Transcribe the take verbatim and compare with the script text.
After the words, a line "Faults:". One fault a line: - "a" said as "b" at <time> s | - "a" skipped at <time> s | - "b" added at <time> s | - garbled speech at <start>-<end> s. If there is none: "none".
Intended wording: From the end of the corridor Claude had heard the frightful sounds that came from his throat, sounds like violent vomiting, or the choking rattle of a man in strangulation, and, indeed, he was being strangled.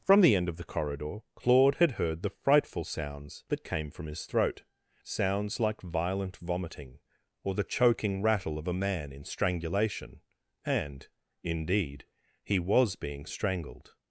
From the end of the corridor Claude had heard the frightful sounds that came from his throat, sounds like violent vomiting, or the choking rattle of a man in strangulation, and, indeed, he was being strangled.
Faults:
none